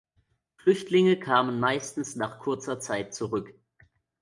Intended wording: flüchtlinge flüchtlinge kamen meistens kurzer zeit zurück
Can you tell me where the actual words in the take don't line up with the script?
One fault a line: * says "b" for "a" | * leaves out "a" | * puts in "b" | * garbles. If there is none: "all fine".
* leaves out "flüchtlinge"
* puts in "nach"